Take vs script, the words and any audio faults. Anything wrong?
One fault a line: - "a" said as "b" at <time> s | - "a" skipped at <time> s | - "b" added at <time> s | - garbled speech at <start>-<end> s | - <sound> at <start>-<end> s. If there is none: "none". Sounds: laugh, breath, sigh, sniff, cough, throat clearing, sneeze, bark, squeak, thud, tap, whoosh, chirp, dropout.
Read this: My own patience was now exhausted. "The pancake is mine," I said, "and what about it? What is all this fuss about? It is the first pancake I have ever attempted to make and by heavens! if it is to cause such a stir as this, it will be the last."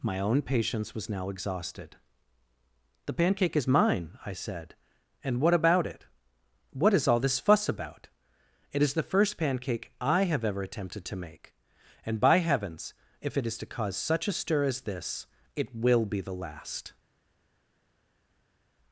none